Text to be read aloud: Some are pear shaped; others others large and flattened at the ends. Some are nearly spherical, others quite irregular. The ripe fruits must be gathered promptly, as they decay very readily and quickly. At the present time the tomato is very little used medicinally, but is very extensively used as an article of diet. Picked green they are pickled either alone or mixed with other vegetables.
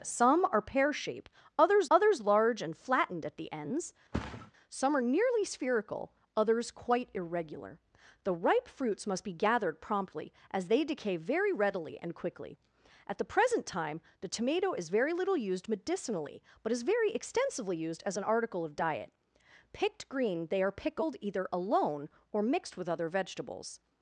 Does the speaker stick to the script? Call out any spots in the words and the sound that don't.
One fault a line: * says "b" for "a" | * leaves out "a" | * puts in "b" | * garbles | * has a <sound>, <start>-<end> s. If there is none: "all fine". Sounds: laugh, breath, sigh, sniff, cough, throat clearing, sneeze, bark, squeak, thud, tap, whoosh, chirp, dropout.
* has a thud, 4.1-4.5 s